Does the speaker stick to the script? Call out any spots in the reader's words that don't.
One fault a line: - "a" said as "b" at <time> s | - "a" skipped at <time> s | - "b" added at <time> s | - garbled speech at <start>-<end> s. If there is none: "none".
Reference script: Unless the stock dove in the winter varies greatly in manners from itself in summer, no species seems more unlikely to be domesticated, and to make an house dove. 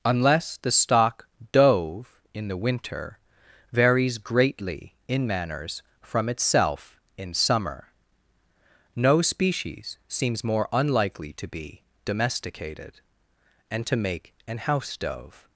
none